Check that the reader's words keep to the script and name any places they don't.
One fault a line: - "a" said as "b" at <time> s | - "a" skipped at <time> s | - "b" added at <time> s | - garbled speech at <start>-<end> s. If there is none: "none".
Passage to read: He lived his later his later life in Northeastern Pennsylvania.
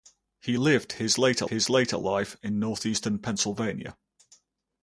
none